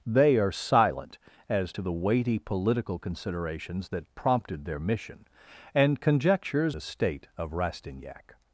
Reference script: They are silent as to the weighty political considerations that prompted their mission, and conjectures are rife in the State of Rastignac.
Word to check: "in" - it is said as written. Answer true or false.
false